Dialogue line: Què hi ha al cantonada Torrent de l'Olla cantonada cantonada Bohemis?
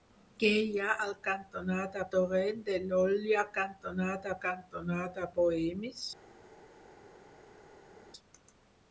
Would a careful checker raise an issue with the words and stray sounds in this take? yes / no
no